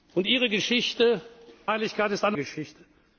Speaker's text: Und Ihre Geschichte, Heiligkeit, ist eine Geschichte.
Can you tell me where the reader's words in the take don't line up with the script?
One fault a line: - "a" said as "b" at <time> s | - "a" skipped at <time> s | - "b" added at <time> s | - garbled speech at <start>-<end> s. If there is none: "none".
none